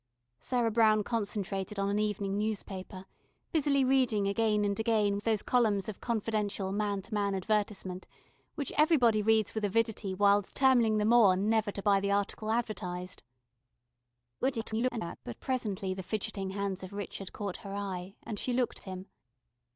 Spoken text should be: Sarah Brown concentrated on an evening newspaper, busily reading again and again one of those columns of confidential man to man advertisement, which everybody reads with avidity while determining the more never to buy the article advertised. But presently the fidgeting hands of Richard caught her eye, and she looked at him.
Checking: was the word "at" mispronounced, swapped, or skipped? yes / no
yes